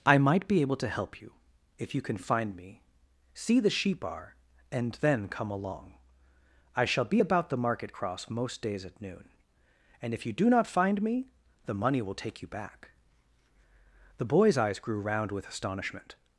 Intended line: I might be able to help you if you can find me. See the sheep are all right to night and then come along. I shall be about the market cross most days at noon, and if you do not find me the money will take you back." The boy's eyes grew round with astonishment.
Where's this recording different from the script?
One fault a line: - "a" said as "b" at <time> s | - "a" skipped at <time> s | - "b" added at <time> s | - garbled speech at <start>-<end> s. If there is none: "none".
- "all right to night" skipped at 4.3 s